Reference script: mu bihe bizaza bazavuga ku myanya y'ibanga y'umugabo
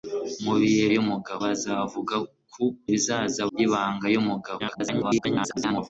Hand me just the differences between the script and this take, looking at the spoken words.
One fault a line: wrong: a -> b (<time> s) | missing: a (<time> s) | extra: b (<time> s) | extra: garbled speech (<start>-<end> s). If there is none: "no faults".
wrong: bizaza -> y'umugabo (1.0 s)
wrong: myanya -> bizaza (2.9 s)
extra: garbled speech (4.6-5.9 s)